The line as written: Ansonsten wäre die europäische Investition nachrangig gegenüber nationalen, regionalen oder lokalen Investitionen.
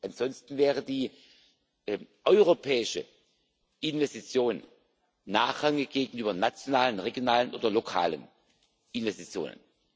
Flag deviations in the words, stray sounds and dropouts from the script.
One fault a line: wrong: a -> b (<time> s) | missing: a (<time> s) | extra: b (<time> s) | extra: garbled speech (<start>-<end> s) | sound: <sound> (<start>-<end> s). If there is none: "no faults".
no faults